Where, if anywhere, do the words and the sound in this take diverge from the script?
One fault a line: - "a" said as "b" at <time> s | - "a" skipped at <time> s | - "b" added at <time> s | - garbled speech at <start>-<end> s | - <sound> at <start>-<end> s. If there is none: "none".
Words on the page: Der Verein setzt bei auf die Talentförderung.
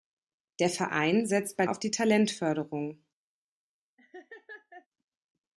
- laugh at 4.0-4.9 s